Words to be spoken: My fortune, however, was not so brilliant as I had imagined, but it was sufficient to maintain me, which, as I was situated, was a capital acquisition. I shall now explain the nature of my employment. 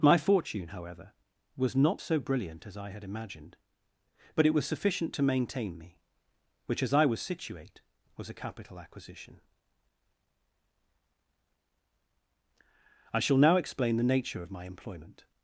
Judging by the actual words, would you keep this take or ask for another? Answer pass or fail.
fail